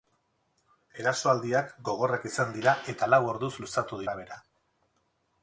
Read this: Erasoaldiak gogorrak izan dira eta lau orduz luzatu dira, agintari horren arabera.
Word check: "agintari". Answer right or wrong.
wrong